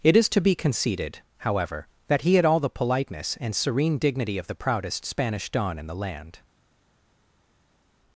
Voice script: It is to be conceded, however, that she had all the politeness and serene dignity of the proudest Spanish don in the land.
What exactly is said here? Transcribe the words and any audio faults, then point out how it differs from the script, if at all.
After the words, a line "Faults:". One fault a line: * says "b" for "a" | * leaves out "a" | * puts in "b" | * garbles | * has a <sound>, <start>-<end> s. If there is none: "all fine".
It is to be conceded, however, that he had all the politeness and serene dignity of the proudest Spanish don in the land.
Faults:
* says "he" for "she"